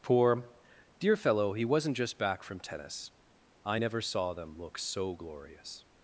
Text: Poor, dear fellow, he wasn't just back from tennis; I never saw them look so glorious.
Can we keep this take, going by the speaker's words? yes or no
yes